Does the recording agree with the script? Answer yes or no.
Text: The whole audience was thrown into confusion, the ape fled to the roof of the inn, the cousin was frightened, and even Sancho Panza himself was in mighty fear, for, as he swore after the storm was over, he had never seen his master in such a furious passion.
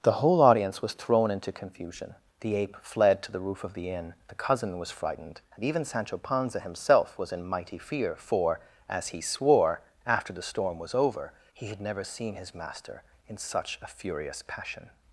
yes